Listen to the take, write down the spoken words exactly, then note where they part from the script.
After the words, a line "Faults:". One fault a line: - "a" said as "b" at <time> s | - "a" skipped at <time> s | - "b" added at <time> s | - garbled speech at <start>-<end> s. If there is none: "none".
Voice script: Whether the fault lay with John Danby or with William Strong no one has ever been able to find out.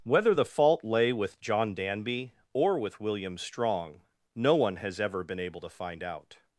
Whether the fault lay with John Danby or with William Strong no one has ever been able to find out.
Faults:
none